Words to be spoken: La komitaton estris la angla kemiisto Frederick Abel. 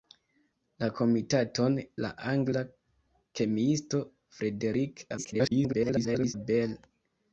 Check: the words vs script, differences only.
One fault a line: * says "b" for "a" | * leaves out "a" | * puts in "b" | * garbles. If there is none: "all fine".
* leaves out "estris"
* garbles